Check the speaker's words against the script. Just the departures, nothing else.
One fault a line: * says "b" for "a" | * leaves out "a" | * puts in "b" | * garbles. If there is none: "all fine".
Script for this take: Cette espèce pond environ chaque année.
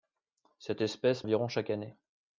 * leaves out "pond"